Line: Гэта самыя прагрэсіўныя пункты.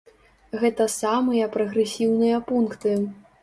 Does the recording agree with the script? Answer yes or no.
yes